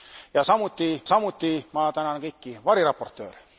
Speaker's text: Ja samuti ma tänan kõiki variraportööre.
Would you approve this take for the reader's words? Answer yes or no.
no